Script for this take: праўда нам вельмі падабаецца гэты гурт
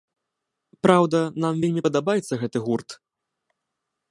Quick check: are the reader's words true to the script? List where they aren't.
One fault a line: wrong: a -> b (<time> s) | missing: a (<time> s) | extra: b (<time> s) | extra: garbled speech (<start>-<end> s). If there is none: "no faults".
no faults